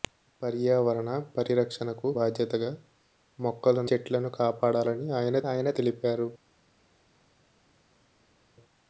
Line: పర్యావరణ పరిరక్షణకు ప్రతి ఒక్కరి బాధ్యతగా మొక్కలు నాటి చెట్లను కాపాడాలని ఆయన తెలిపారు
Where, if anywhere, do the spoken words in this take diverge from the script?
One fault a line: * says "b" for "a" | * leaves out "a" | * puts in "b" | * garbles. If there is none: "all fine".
* leaves out "ప్రతి ఒక్కరి"
* leaves out "నాటి"
* puts in "ఆయన"